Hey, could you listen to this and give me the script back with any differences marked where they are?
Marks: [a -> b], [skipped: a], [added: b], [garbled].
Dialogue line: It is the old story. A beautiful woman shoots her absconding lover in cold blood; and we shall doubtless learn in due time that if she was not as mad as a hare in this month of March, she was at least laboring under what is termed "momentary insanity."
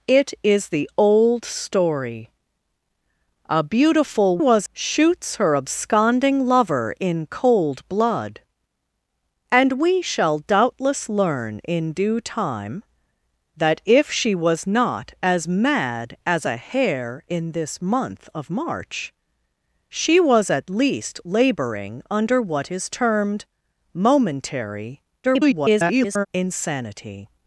It is the old story. A beautiful [woman -> was] shoots her absconding lover in cold blood; and we shall doubtless learn in due time that if she was not as mad as a hare in this month of March, she was at least laboring under what is termed "momentary [garbled] insanity."